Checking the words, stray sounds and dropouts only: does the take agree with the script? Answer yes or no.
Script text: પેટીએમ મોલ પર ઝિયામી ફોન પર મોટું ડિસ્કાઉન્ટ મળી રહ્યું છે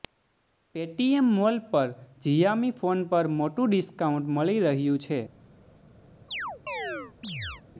no